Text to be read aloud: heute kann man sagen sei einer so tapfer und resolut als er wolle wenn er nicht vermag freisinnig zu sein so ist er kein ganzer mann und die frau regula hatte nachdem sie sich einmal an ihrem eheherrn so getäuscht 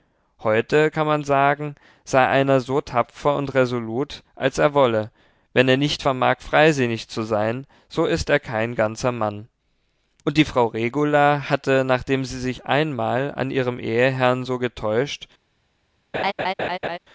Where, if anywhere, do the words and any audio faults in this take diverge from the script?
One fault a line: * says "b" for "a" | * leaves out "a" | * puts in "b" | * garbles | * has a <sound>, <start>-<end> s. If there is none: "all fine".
* has a laugh, 16.1-17.0 s